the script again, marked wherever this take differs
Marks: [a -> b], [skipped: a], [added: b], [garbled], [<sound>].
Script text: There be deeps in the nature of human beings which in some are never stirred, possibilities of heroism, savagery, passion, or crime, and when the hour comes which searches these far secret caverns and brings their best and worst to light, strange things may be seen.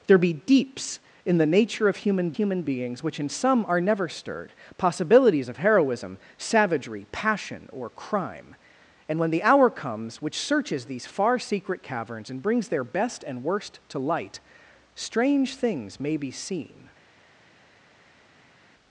There be deeps in the nature of human [added: human] beings which in some are never stirred, possibilities of heroism, savagery, passion, or crime, and when the hour comes which searches these far secret caverns and brings their best and worst to light, strange things may be seen.